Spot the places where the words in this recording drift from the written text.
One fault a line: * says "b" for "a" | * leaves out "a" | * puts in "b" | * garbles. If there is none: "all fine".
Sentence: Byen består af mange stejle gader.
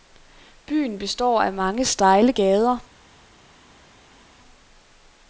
all fine